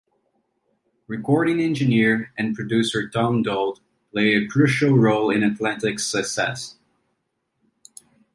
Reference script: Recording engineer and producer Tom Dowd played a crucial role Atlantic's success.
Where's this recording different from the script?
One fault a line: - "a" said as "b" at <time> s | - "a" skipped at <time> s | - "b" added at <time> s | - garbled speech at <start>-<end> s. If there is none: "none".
- "in" added at 5.3 s